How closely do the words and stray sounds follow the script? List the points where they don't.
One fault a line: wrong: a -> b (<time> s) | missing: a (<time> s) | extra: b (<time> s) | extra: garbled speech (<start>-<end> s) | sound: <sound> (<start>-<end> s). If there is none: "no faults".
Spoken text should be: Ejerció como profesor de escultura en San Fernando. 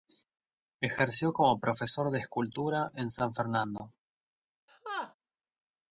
sound: laugh (4.7-5.1 s)